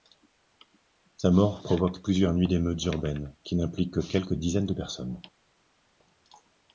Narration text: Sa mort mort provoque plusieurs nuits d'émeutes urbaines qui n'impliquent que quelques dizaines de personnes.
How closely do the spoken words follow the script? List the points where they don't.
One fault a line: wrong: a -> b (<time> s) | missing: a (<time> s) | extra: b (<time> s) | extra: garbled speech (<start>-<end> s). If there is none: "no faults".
missing: mort (1.6 s)